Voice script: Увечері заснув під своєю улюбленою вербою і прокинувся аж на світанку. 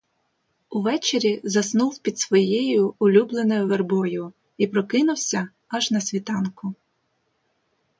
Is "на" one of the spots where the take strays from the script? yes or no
no